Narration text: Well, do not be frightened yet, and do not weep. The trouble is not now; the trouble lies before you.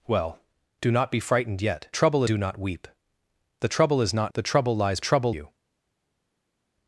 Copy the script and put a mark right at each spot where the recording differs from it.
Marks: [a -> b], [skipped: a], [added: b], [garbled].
Well, do not be frightened yet, [and -> trouble] do not weep. The trouble is not [skipped: now;] the trouble lies [before -> trouble] you.